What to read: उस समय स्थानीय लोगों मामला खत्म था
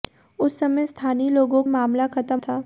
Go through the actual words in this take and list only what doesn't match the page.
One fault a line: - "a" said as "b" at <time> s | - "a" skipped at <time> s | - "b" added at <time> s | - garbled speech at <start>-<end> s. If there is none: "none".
none